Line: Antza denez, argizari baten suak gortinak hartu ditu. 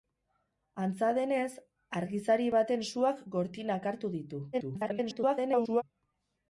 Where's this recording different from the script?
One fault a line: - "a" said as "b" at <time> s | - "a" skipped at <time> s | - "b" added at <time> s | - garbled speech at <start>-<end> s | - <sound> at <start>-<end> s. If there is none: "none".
- garbled speech at 4.5-5.8 s